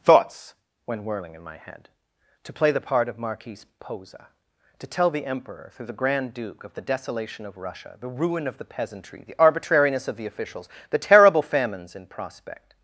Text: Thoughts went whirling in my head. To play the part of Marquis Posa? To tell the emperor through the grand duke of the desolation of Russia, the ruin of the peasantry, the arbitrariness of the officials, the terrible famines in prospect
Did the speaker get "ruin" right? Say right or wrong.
right